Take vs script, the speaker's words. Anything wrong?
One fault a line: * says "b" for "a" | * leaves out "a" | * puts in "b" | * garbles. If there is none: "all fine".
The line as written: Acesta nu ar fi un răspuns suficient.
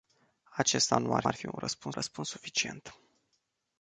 * puts in "ar"
* puts in "răspuns"